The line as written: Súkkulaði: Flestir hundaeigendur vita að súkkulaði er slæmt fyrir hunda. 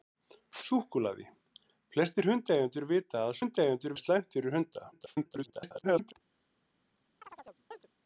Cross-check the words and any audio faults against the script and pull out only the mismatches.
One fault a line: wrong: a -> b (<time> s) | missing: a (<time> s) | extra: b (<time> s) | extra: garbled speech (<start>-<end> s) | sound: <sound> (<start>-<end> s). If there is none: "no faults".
wrong: súkkulaði -> hundaeigendur (3.4 s)
extra: garbled speech (4.9-6.1 s)
sound: chirp (7.2-7.9 s)